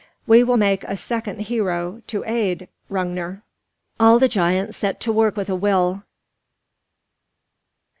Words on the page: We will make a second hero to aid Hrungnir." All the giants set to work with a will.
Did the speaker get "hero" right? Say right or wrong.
right